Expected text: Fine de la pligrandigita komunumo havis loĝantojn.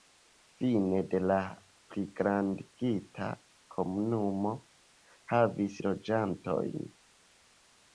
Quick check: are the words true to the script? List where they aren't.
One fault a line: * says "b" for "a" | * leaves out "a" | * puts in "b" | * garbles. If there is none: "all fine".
all fine